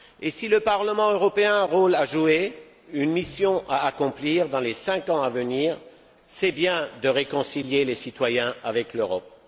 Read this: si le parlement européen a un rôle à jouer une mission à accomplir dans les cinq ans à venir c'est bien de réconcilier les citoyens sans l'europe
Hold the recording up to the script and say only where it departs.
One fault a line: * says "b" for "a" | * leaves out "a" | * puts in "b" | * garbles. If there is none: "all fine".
* says "avec" for "sans"